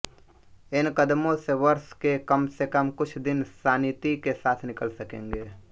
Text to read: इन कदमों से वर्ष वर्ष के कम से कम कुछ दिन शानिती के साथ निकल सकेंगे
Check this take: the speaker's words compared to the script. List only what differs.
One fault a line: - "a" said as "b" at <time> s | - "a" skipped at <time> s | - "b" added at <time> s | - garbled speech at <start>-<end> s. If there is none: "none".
- "वर्ष" skipped at 1.9 s